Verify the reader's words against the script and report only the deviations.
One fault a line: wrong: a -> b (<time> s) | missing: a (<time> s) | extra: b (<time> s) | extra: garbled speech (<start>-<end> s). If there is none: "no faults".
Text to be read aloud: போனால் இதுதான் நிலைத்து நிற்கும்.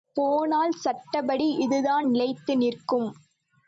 extra: சட்டப்படி (0.8 s)